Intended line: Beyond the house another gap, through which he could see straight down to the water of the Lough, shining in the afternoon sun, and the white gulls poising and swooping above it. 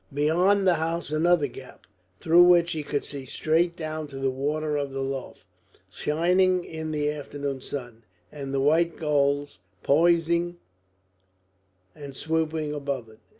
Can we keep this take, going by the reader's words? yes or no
yes